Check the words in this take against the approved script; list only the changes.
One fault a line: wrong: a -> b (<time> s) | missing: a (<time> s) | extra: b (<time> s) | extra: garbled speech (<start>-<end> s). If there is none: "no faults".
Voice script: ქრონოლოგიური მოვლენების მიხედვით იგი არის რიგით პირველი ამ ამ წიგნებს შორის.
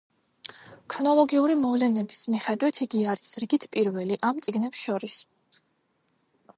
missing: ამ (4.4 s)